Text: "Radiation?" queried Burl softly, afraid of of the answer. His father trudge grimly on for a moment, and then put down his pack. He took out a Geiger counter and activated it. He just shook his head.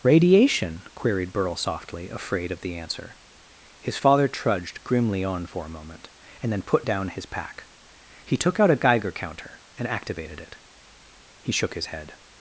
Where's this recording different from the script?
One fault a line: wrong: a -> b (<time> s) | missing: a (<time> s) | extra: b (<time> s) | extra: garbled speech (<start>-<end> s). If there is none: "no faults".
missing: of (2.6 s)
wrong: trudge -> trudged (4.3 s)
missing: just (11.5 s)